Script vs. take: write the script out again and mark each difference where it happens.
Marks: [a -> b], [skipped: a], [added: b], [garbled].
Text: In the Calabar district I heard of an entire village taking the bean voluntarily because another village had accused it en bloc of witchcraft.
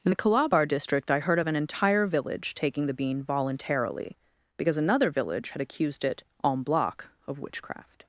In the Calabar district I heard of an entire village taking the bean voluntarily because another village had accused it en bloc of witchcraft.